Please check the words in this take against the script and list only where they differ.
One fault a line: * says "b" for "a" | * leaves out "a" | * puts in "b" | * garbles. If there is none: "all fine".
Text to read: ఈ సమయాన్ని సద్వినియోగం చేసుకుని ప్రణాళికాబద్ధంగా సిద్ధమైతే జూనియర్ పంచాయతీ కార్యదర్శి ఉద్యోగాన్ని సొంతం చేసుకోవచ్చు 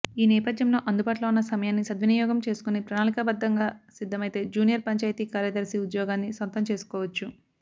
* puts in "నేపథ్యంలో అందుబాటులో ఉన్న"